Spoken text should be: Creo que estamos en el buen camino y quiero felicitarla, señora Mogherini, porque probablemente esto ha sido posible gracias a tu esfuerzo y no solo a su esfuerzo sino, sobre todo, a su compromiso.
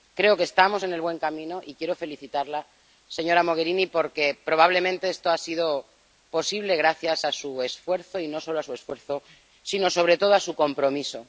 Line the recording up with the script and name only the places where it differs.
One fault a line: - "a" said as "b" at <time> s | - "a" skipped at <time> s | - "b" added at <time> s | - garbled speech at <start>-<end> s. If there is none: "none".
- "tu" said as "su" at 7.3 s